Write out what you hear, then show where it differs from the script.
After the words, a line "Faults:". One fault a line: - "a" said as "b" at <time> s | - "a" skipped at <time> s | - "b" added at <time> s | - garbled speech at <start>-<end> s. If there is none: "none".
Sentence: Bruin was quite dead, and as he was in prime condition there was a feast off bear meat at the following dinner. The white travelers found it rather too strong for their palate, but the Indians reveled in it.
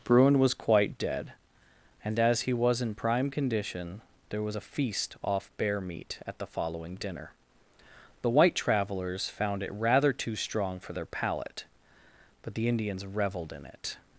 Bruin was quite dead, and as he was in prime condition there was a feast off bear meat at the following dinner. The white travelers found it rather too strong for their palate, but the Indians reveled in it.
Faults:
none